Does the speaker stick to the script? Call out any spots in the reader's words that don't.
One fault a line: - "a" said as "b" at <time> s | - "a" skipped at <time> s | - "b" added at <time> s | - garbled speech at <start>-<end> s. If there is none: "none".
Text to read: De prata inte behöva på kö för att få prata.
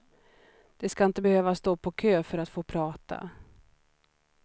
- "prata" said as "ska" at 0.9 s
- "stå" added at 1.5 s